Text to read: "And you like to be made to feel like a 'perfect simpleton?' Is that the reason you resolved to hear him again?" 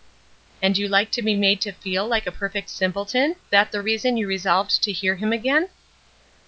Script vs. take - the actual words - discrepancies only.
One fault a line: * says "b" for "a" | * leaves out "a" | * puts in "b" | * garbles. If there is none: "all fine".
* leaves out "Is"